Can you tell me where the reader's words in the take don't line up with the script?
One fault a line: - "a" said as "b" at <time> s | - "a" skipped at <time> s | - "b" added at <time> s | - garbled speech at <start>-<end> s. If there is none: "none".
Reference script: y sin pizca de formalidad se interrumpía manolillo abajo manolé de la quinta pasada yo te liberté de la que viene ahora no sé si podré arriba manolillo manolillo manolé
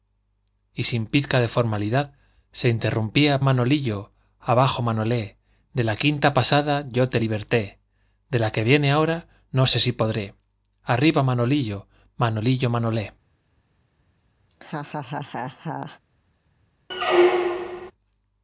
none